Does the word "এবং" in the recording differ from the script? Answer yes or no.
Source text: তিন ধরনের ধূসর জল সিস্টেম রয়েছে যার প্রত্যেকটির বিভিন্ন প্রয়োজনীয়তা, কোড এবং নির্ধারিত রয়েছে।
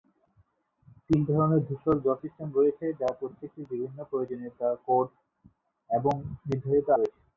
no